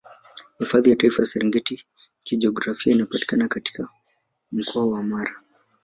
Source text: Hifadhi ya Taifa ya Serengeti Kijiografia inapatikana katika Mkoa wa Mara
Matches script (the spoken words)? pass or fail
pass